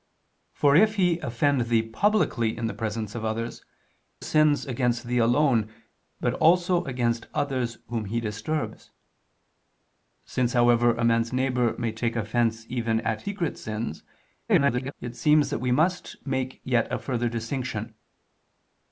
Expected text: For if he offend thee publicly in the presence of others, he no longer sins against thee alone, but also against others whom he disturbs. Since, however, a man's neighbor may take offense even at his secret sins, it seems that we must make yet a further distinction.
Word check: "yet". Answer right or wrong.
right